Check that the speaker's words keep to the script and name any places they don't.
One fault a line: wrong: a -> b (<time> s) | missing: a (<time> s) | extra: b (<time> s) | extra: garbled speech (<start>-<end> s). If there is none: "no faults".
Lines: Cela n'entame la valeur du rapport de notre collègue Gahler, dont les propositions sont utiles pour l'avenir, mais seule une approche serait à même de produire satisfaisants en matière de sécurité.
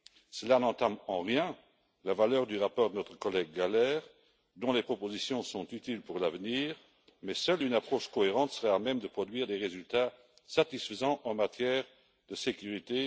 extra: en rien (1.1 s)
extra: cohérente (8.1 s)
extra: des résultats (9.4 s)